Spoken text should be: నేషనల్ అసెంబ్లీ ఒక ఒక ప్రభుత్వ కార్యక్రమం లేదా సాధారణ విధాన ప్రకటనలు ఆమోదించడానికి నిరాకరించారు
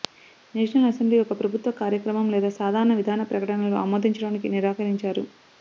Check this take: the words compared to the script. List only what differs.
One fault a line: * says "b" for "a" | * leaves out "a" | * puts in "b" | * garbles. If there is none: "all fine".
* leaves out "ఒక"